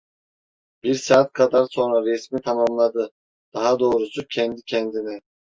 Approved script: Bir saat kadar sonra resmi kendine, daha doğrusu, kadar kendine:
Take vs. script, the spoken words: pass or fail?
fail